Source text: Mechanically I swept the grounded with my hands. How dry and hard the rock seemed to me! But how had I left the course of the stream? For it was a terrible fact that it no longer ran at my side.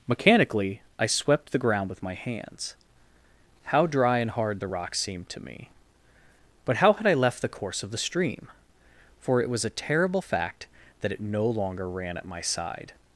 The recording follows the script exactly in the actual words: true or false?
false